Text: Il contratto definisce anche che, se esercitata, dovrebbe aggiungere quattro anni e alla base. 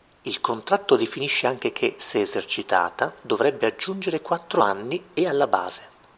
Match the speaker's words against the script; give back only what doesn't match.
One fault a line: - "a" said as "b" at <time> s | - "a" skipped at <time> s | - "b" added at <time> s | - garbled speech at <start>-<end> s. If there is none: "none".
none